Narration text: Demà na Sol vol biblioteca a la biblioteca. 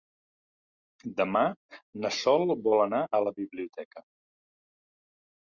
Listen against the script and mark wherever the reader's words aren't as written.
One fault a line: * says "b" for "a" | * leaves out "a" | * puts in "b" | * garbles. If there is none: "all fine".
* says "anar" for "biblioteca"